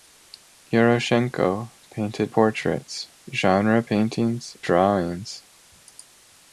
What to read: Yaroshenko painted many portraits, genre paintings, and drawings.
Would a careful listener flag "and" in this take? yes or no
yes